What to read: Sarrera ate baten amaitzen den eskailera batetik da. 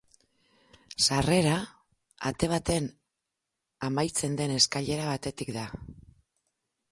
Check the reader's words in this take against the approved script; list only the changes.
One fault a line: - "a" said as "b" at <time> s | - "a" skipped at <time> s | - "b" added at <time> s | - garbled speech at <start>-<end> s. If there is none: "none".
none